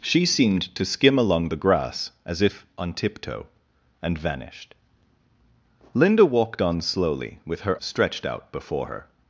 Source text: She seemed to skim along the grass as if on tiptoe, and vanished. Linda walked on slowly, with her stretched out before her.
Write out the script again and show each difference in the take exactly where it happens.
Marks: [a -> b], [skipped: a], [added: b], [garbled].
She seemed to skim along the grass as if on tiptoe, and vanished. Linda walked on slowly, with her stretched out before her.